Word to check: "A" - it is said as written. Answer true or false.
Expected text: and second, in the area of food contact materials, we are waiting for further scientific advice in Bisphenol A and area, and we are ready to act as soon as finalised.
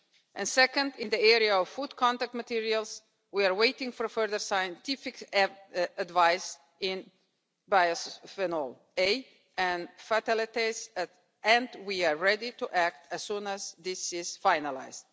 true